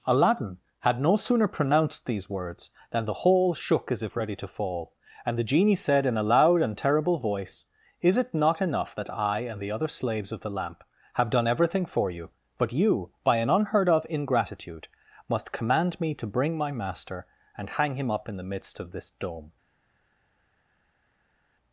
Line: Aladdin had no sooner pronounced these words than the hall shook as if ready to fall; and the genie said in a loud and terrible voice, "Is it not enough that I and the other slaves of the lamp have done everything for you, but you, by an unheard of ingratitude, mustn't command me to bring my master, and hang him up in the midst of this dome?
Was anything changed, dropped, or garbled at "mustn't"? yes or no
yes